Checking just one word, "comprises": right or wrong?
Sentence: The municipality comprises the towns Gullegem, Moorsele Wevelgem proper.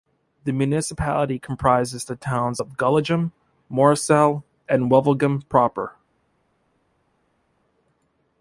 right